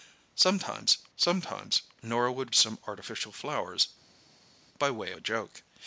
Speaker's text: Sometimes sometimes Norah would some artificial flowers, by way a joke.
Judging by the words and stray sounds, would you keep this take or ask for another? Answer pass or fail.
pass